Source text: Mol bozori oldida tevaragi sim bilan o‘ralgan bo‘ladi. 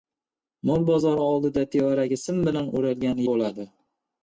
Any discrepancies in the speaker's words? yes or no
no